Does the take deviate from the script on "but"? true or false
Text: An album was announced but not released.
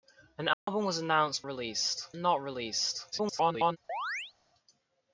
true